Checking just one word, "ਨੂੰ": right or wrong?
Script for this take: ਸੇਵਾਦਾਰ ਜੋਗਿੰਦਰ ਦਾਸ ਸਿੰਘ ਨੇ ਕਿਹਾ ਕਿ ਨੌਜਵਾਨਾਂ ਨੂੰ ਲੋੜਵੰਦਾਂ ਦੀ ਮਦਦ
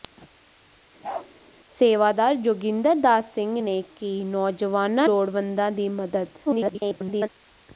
wrong